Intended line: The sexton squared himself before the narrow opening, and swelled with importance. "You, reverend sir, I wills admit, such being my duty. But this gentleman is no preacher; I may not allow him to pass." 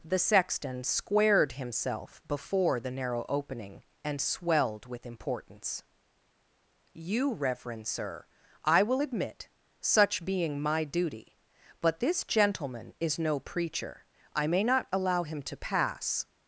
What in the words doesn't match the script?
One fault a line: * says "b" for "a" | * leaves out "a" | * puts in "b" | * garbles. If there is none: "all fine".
* says "will" for "wills"